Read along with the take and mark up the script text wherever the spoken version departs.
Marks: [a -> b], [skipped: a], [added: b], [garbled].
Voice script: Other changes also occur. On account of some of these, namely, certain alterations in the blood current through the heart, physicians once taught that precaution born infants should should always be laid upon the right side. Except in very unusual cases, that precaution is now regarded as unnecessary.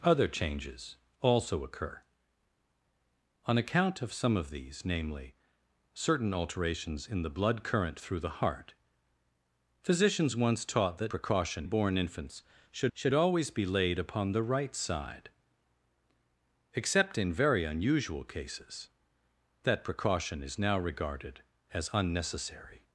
Other changes also occur. On account of some of these, namely, certain alterations in the blood current through the heart, physicians once taught that precaution born infants should should always be laid upon the right side. Except in very unusual cases, that precaution is now regarded as unnecessary.